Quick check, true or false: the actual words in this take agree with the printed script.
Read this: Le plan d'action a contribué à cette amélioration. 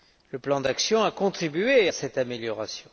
true